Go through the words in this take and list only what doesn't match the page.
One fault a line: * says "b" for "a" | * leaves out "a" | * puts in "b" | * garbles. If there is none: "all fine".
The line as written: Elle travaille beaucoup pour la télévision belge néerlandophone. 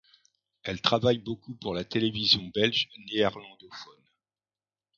all fine